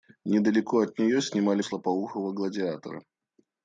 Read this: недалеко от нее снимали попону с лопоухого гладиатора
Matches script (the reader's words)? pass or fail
fail